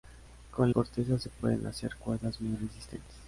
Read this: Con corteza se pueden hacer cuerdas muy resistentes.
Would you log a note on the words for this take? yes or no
no